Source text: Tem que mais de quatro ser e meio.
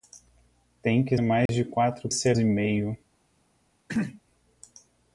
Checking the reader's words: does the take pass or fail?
pass